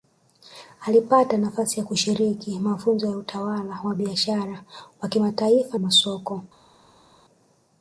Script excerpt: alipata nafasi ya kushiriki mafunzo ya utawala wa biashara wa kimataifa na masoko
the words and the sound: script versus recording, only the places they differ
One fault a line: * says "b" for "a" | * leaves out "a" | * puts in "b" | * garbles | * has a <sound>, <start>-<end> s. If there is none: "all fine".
* leaves out "na"